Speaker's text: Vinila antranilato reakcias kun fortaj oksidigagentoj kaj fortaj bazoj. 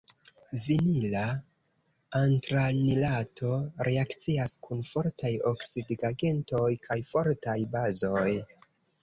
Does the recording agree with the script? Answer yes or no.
yes